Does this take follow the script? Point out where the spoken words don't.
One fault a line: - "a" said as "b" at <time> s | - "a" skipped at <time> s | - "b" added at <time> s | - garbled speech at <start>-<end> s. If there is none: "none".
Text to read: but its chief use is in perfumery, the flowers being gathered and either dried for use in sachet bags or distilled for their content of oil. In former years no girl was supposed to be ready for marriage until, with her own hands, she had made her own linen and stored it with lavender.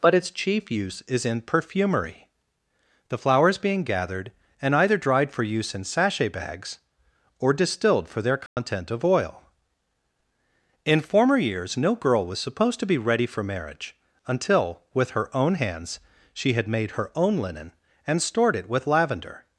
none